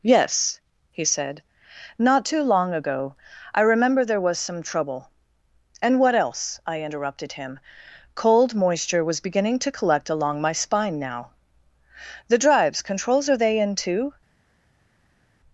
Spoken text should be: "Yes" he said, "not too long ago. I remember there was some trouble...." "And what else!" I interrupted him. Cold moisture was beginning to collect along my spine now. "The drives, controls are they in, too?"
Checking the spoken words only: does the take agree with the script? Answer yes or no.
yes